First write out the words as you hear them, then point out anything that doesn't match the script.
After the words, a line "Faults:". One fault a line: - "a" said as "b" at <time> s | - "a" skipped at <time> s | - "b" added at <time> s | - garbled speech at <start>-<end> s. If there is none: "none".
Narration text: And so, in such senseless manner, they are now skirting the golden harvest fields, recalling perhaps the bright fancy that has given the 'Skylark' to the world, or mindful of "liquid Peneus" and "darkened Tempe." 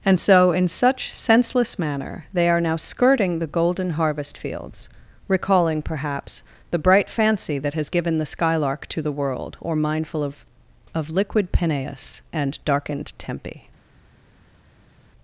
And so, in such senseless manner, they are now skirting the golden harvest fields, recalling perhaps the bright fancy that has given the 'Skylark' to the world, or mindful of of "liquid Peneus" and "darkened Tempe."
Faults:
- "of" added at 10.9 s